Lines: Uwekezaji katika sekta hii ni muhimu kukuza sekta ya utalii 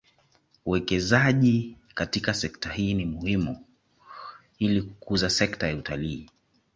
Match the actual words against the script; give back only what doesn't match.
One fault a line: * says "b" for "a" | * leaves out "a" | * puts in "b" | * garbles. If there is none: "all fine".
* puts in "ili"